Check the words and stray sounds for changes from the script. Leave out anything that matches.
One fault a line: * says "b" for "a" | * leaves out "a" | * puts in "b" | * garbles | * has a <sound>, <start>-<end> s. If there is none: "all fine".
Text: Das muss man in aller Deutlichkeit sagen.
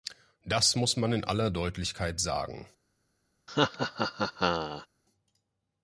* has a laugh, 3.5-4.9 s